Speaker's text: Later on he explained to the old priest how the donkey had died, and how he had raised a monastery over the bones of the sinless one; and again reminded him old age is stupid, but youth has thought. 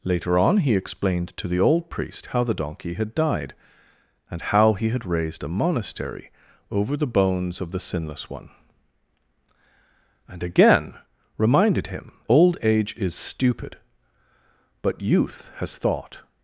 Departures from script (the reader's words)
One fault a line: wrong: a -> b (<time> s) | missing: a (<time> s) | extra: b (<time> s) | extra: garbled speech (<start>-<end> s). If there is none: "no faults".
no faults